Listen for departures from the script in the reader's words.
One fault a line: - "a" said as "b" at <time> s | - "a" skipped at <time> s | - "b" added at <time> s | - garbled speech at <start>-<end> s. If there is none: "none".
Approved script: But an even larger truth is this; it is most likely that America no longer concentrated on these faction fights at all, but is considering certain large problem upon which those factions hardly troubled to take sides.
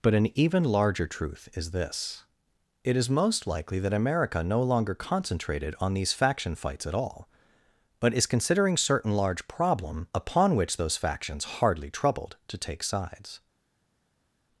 none